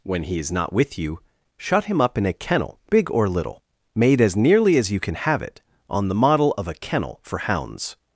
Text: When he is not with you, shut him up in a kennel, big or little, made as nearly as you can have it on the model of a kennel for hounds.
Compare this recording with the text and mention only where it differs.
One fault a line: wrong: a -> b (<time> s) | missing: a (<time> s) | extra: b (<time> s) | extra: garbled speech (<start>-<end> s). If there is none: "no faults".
no faults